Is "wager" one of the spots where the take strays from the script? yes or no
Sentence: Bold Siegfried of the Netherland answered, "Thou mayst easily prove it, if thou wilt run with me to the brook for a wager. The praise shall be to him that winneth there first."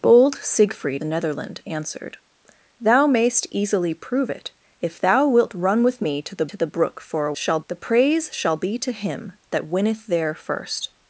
yes